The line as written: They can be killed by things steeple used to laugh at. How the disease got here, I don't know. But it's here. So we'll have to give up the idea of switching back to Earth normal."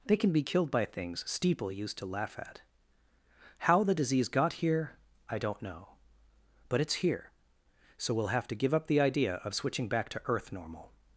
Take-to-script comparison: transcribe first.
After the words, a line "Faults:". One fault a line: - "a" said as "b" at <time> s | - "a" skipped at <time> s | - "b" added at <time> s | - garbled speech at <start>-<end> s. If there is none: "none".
They can be killed by things steeple used to laugh at. How the disease got here, I don't know. But it's here. So we'll have to give up the idea of switching back to Earth normal."
Faults:
none